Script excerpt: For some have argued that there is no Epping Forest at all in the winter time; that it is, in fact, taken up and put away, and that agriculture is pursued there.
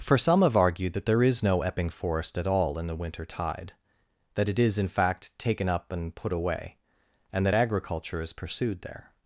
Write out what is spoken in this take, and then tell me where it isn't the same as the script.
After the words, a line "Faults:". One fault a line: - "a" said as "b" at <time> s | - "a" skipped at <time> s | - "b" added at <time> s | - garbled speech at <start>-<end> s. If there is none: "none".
For some have argued that there is no Epping Forest at all in the winter tide; that it is, in fact, taken up and put away, and that agriculture is pursued there.
Faults:
- "time" said as "tide" at 3.3 s